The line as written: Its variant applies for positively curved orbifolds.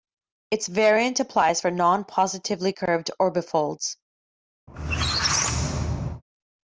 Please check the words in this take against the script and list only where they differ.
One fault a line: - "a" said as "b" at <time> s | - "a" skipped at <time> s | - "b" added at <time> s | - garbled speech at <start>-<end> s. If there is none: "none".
- "non" added at 1.7 s